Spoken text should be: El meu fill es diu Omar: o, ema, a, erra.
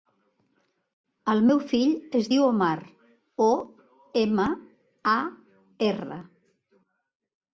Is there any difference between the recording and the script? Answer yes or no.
no